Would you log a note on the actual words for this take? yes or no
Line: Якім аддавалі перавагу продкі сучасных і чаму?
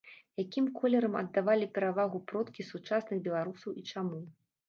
yes